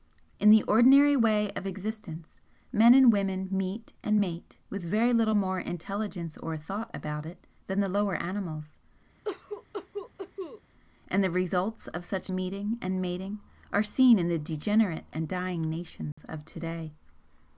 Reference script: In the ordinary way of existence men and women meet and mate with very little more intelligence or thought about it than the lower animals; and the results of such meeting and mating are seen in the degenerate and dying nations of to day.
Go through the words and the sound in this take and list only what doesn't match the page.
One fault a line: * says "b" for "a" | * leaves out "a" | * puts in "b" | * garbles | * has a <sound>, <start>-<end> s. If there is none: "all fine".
* has a cough, 9.2-10.6 s
* has a dropout, 16.1-16.2 s